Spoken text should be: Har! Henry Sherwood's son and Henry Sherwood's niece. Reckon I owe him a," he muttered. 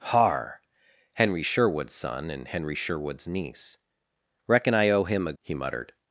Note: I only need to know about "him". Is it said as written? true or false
true